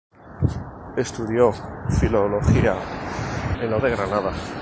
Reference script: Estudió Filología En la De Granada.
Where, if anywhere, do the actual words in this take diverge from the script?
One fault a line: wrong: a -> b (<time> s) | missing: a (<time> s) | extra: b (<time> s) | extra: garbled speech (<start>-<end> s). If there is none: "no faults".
no faults